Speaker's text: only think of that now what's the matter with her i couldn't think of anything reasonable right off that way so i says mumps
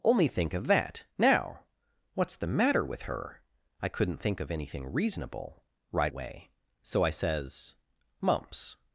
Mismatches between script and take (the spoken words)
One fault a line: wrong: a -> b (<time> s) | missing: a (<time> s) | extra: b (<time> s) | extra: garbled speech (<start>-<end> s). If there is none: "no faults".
missing: off that (6.1 s)